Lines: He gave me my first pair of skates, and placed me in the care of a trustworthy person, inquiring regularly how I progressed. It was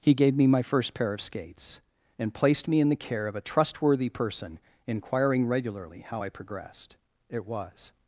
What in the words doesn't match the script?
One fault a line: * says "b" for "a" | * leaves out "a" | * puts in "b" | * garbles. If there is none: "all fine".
all fine